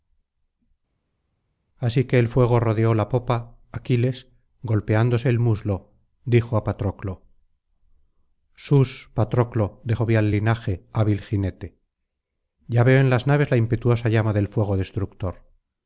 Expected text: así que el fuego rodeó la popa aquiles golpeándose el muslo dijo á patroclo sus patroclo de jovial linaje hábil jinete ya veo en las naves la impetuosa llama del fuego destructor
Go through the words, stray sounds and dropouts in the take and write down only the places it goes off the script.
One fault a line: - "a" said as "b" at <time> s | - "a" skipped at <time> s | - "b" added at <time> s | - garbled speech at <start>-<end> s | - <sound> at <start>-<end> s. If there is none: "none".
none